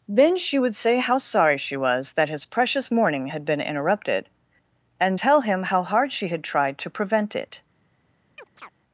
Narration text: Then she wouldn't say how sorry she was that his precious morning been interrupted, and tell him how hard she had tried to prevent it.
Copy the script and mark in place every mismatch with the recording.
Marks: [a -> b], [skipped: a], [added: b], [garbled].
Then she [wouldn't -> would] say how sorry she was that his precious morning [added: had] been interrupted, and tell him how hard she had tried to prevent it.